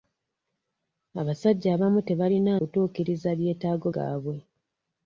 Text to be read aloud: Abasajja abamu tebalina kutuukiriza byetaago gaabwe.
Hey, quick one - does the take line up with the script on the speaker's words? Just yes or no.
yes